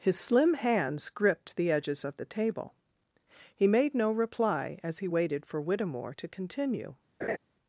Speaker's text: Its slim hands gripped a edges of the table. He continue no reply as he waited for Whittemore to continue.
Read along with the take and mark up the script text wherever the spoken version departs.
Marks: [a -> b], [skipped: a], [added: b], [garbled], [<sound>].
[Its -> His] slim hands gripped [a -> the] edges of the table. He [continue -> made] no reply as he waited for Whittemore to continue. [laugh]